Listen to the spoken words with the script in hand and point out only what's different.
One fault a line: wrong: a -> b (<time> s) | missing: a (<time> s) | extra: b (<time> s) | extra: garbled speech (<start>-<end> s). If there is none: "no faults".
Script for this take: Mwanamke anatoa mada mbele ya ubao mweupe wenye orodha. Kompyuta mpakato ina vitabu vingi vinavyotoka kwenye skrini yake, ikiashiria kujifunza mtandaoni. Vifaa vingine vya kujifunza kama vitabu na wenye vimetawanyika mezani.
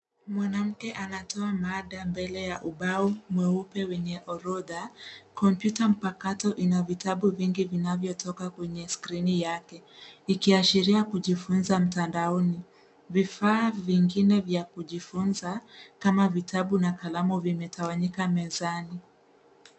wrong: wenye -> kalamu (16.9 s)